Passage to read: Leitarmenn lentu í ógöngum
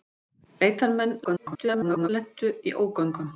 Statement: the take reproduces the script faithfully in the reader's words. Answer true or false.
false